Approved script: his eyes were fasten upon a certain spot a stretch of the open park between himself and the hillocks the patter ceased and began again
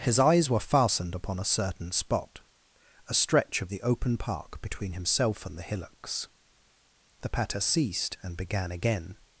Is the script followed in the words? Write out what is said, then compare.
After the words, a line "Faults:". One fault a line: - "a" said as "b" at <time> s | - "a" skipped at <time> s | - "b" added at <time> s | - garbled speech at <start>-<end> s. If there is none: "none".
his eyes were fastened upon a certain spot a stretch of the open park between himself and the hillocks the patter ceased and began again
Faults:
- "fasten" said as "fastened" at 0.6 s